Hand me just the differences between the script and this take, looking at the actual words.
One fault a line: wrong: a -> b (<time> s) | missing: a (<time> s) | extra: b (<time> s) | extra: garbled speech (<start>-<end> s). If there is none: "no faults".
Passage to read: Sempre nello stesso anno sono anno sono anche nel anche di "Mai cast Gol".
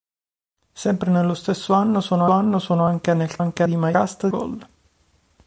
no faults